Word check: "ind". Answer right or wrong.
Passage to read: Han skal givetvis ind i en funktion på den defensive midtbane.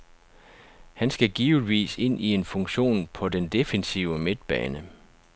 right